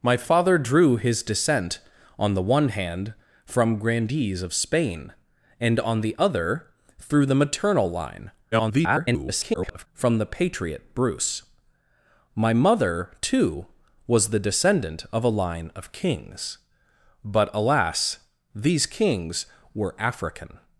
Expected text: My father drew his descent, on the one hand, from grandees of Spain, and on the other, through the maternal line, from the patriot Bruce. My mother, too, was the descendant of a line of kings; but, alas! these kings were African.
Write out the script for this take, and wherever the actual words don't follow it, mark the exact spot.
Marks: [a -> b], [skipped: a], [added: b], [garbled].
My father drew his descent, on the one hand, from grandees of Spain, and on the other, through the maternal line, [garbled] from the patriot Bruce. My mother, too, was the descendant of a line of kings; but, alas! these kings were African.